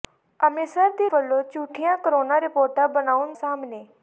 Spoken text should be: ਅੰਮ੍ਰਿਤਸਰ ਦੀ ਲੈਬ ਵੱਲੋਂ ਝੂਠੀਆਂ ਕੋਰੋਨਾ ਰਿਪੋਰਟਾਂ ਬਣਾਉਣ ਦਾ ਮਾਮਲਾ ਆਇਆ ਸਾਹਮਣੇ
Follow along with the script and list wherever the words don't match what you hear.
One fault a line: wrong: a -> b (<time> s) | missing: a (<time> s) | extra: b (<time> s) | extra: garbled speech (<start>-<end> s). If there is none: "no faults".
missing: ਲੈਬ (1.1 s)
missing: ਦਾ ਮਾਮਲਾ ਆਇਆ (3.3 s)